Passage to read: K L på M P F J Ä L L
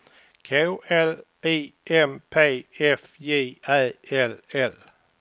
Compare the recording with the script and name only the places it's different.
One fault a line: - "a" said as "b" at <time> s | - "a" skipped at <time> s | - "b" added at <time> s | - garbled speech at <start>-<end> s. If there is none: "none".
- "på" said as "I" at 1.4 s